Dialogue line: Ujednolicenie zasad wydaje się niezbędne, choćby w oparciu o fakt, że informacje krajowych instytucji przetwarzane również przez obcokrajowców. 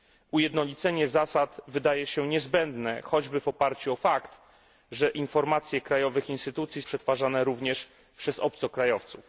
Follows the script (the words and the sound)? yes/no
yes